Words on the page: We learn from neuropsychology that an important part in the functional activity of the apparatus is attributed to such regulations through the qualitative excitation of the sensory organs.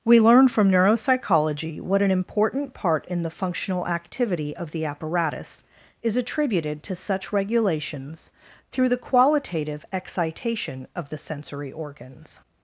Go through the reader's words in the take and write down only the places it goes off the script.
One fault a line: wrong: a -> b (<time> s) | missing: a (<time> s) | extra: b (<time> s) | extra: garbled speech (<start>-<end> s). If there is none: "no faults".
wrong: that -> what (1.8 s)